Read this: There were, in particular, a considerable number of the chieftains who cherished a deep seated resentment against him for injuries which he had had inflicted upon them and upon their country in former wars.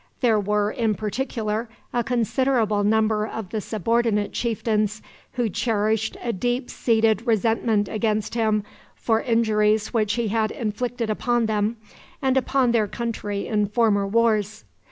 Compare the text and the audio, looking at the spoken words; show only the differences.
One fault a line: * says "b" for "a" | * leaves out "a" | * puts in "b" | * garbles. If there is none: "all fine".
* puts in "subordinate"
* leaves out "had"